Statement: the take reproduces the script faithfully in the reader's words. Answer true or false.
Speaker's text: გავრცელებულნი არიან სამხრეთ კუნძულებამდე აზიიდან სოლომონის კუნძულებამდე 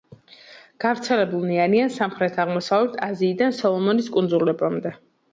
false